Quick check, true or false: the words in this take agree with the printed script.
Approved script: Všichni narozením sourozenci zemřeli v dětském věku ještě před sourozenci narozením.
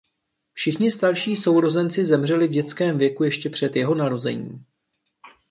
false